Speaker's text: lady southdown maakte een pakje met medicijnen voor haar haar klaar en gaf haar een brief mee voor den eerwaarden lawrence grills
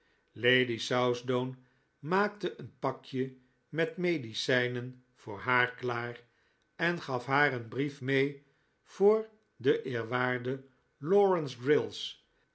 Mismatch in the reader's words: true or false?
true